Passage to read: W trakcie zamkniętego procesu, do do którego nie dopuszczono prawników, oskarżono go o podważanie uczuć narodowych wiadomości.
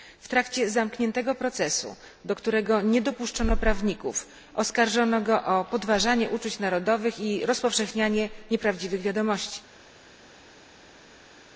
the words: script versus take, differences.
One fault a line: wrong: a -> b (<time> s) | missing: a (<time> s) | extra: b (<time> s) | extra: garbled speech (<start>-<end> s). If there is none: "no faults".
missing: do (2.4 s)
extra: i rozpowszechnianie nieprawdziwych (7.2 s)